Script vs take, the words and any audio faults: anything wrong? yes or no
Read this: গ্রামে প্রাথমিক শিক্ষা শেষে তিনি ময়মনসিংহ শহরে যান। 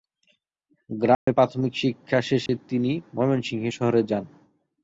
yes